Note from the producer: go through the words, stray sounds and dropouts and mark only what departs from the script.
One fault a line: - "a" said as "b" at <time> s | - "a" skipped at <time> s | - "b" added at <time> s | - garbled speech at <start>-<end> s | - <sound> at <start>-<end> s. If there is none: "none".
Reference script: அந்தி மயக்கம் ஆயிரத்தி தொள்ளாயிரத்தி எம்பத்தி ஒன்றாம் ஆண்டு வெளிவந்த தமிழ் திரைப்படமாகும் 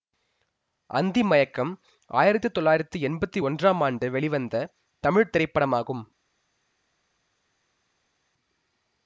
none